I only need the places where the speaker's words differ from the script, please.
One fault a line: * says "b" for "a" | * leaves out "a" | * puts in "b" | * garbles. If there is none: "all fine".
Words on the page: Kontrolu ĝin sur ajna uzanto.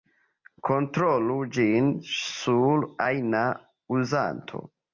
all fine